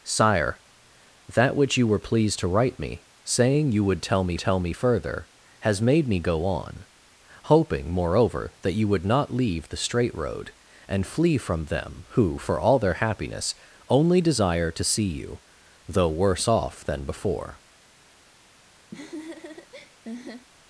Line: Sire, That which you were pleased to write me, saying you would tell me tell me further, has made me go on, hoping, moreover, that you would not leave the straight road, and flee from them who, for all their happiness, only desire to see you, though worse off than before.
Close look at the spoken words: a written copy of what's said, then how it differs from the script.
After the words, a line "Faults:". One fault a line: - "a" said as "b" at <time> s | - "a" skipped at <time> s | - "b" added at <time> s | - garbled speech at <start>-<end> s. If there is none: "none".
Sire, That which you were pleased to write me, saying you would tell me tell me further, has made me go on, hoping, moreover, that you would not leave the straight road, and flee from them who, for all their happiness, only desire to see you, though worse off than before.
Faults:
none